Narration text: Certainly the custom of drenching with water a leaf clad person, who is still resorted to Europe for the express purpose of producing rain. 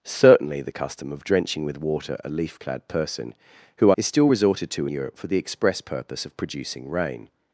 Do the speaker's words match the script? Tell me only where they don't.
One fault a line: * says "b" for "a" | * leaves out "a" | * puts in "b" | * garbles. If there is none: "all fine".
all fine